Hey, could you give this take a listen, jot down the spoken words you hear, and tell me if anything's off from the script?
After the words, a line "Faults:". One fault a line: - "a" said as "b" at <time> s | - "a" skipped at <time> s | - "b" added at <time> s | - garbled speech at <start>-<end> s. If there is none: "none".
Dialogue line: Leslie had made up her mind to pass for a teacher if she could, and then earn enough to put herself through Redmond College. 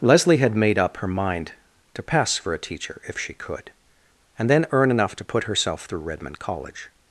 Leslie had made up her mind to pass for a teacher if she could, and then earn enough to put herself through Redmond College.
Faults:
none